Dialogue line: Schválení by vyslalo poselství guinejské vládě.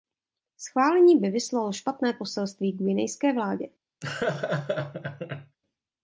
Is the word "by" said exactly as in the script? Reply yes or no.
yes